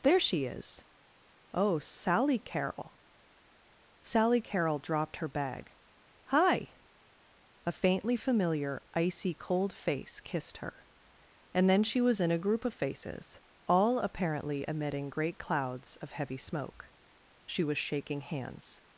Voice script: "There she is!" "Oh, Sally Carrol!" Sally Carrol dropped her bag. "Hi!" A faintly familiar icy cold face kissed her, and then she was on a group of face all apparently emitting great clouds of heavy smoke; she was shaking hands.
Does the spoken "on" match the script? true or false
false